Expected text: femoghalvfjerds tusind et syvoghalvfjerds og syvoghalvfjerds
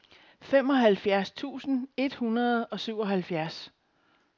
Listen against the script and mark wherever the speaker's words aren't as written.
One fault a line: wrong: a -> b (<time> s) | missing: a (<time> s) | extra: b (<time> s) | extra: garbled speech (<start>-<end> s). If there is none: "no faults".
wrong: syvoghalvfjerds -> hundrede (2.1 s)